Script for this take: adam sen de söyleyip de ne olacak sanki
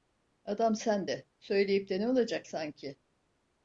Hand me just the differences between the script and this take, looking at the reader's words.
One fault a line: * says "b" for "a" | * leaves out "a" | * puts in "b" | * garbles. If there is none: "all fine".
all fine